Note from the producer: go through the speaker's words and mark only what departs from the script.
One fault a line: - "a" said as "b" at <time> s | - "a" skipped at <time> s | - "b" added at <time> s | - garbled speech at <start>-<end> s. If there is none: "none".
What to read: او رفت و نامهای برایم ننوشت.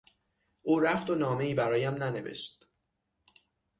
none